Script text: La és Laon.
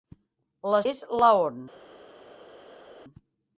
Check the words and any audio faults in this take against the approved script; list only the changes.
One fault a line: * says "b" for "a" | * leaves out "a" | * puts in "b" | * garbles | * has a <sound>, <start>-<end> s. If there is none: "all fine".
all fine